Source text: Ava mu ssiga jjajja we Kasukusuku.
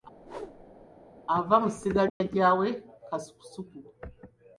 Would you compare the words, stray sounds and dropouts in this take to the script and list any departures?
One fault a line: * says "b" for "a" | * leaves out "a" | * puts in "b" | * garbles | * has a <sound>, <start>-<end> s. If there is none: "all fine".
* has a whoosh, 0.2-0.9 s
* has a dropout, 2.1-2.2 s